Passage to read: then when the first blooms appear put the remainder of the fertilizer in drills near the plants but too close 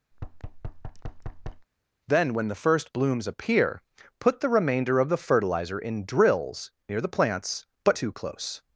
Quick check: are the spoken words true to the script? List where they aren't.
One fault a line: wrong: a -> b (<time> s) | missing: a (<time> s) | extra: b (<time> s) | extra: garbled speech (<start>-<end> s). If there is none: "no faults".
no faults